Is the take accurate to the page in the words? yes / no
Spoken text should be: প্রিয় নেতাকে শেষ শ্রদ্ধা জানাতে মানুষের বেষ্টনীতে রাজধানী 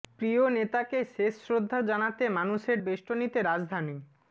yes